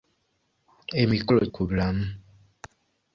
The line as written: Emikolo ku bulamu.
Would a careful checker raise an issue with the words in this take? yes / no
no